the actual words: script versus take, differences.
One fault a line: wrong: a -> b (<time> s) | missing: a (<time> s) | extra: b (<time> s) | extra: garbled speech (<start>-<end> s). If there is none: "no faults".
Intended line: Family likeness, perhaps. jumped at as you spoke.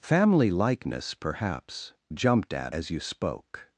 no faults